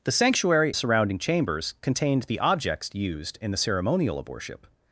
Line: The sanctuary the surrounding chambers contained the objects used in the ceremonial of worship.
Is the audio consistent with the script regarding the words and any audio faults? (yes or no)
yes